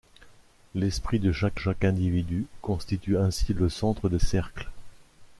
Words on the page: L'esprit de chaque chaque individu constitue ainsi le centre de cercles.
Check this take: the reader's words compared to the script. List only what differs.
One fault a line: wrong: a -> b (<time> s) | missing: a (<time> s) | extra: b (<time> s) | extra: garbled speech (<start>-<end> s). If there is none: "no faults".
no faults